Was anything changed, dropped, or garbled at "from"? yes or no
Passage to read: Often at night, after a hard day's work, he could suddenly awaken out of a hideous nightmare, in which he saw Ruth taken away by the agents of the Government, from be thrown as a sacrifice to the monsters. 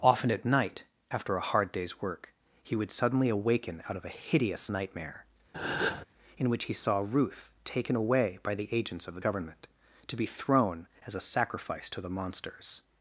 yes